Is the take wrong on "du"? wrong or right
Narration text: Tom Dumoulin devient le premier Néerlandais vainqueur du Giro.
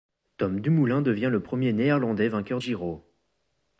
wrong